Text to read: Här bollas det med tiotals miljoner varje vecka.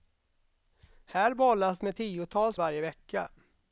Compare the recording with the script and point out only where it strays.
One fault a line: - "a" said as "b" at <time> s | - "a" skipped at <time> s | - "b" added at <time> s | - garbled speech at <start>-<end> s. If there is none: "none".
- "det" skipped at 1.8 s
- "miljoner" skipped at 2.6 s